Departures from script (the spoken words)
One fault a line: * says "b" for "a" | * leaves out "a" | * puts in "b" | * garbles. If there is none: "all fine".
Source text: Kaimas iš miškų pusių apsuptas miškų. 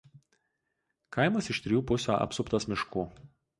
* says "trijų" for "miškų"